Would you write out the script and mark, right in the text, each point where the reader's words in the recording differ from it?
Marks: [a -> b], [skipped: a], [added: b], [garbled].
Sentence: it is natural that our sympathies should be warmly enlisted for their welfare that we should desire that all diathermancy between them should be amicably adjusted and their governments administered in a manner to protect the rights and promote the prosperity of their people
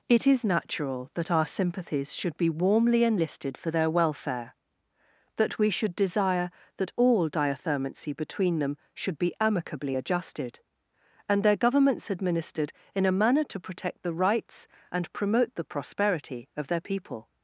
it is natural that our sympathies should be warmly enlisted for their welfare that we should desire that all diathermancy between them should be amicably adjusted and their governments administered in a manner to protect the rights and promote the prosperity of their people